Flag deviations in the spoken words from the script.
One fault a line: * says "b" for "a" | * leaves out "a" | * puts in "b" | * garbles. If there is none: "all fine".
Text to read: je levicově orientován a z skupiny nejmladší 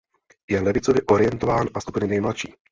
all fine